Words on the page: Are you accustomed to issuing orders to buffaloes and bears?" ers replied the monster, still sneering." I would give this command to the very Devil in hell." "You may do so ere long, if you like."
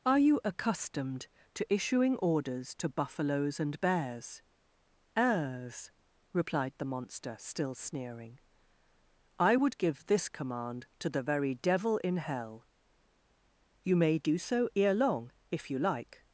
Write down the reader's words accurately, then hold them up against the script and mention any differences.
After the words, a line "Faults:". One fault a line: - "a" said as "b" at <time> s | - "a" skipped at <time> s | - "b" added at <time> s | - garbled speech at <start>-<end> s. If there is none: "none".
Are you accustomed to issuing orders to buffaloes and bears?" ers replied the monster, still sneering." I would give this command to the very Devil in hell." "You may do so ere long, if you like."
Faults:
none